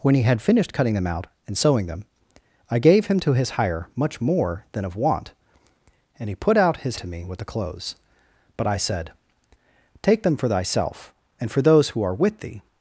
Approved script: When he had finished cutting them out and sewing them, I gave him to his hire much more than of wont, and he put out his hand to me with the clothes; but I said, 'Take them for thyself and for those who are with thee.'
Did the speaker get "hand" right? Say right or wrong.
wrong